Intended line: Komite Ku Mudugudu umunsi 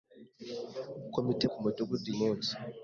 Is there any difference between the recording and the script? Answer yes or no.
no